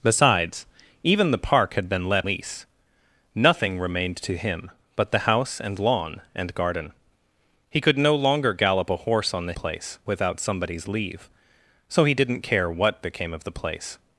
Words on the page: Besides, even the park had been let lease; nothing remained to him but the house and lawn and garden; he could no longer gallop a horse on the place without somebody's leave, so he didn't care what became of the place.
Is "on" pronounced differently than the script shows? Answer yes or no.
no